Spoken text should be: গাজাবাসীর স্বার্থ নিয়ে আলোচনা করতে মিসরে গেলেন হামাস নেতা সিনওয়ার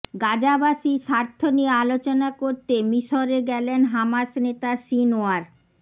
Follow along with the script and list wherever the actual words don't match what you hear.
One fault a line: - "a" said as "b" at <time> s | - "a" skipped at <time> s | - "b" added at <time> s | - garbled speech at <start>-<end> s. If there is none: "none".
none